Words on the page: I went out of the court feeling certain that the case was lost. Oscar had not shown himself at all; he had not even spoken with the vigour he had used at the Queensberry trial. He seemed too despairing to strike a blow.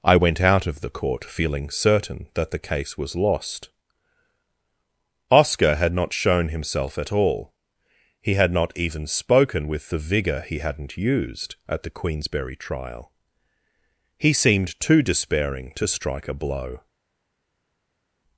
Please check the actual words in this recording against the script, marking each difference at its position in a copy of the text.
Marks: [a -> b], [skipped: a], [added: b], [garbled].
I went out of the court feeling certain that the case was lost. Oscar had not shown himself at all; he had not even spoken with the vigour he [had -> hadn't] used at the Queensberry trial. He seemed too despairing to strike a blow.